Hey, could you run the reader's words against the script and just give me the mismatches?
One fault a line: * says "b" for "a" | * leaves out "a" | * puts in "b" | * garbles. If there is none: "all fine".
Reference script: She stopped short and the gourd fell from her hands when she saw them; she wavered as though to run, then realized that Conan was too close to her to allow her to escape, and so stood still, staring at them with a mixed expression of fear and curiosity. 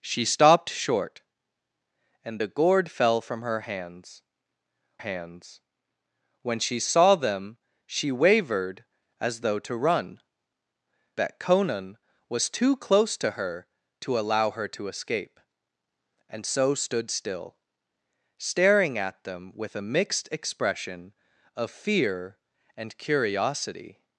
* puts in "hands"
* leaves out "then realized"